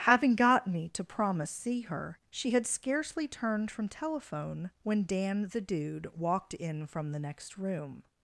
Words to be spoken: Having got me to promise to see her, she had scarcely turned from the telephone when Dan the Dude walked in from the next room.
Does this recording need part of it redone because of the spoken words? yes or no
yes